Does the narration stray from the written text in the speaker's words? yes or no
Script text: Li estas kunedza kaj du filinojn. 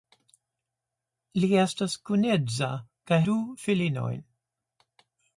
no